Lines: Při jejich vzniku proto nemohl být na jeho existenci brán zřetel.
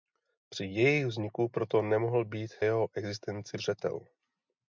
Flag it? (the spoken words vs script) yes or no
yes